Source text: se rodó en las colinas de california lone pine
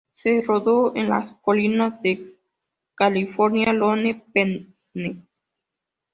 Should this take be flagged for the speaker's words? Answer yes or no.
no